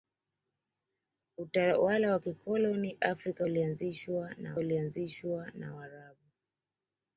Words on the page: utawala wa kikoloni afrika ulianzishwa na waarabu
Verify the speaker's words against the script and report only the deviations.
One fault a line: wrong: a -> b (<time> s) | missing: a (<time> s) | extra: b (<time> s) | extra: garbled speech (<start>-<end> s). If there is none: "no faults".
extra: ulianzishwa na (4.6 s)